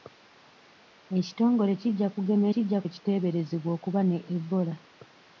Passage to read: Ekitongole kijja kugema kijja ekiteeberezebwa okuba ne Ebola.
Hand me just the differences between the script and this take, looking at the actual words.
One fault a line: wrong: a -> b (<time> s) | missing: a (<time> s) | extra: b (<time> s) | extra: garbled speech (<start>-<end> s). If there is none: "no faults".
no faults